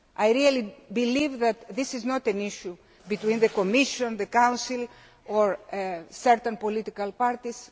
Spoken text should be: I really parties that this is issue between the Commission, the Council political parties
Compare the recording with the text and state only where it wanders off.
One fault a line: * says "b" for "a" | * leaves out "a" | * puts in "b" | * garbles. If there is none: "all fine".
* says "believe" for "parties"
* puts in "not an"
* puts in "or certain"